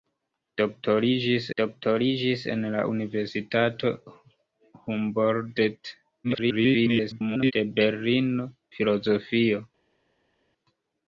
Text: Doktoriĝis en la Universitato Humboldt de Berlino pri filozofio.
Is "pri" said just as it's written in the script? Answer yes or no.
no